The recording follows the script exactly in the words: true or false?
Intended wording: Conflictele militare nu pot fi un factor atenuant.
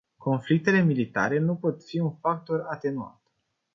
true